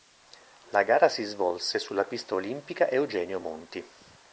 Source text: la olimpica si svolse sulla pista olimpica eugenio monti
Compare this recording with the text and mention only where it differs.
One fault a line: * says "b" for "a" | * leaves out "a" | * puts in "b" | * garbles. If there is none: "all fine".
* says "gara" for "olimpica"